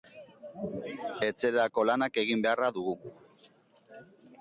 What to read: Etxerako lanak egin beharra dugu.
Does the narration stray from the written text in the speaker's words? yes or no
no